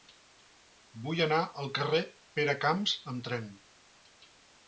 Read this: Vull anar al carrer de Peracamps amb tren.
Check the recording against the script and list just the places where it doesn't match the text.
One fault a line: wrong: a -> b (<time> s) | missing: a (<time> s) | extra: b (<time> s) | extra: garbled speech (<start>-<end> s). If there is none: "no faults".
no faults